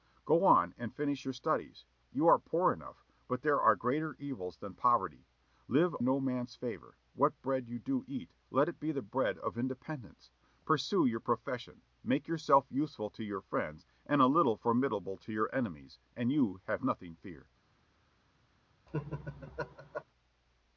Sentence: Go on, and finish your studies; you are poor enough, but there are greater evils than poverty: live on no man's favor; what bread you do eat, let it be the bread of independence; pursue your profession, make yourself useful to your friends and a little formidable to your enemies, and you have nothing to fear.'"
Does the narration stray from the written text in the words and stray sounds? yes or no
yes